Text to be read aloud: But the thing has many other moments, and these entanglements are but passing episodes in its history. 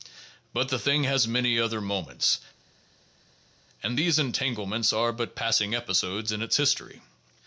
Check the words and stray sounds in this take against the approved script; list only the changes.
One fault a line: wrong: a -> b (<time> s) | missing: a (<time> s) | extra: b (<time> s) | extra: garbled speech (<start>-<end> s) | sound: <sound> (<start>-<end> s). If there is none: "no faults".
no faults